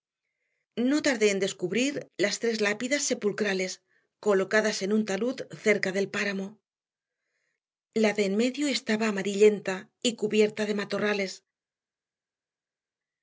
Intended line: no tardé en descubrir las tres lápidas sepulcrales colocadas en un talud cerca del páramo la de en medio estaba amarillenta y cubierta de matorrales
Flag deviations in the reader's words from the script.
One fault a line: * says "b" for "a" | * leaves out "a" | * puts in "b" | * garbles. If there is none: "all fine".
all fine